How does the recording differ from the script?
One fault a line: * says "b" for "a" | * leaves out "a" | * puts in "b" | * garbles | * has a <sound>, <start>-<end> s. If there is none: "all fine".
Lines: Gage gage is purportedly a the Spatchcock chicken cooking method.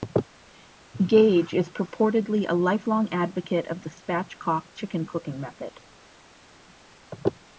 * leaves out "gage"
* puts in "lifelong advocate of"